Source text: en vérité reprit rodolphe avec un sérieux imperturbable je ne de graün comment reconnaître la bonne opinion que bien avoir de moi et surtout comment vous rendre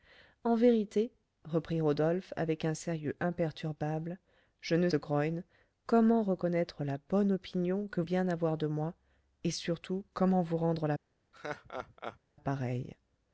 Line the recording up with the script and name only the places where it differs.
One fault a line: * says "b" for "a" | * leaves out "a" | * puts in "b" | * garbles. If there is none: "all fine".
all fine